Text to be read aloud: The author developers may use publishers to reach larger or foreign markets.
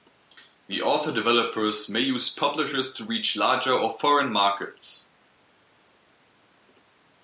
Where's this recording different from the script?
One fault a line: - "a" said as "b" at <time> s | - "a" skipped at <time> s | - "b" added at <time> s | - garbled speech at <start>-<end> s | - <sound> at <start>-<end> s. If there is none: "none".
none